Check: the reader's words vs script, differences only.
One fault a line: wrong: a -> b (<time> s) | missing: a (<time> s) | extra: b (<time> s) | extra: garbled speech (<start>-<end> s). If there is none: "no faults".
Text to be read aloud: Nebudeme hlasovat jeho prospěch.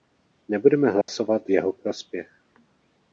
no faults